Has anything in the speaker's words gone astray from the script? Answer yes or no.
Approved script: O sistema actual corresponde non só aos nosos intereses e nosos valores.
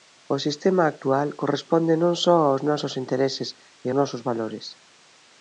no